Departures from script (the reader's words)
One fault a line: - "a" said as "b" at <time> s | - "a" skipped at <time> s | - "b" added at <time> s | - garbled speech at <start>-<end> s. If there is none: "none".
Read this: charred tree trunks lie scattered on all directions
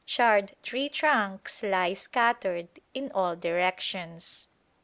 - "on" said as "in" at 2.9 s